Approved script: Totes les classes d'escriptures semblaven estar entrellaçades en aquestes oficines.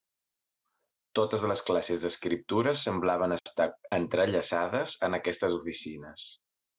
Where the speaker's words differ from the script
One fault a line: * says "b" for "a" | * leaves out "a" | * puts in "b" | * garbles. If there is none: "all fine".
all fine